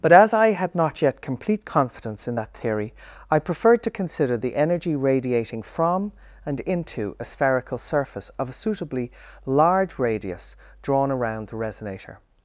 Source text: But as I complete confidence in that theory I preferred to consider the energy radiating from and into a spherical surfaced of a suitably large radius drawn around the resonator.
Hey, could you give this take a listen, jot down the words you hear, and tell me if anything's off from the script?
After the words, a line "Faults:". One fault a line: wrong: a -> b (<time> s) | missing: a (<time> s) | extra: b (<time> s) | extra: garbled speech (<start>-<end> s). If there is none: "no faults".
But as I had not yet complete confidence in that theory I preferred to consider the energy radiating from and into a spherical surface of a suitably large radius drawn around the resonator.
Faults:
extra: had not yet (0.5 s)
wrong: surfaced -> surface (7.8 s)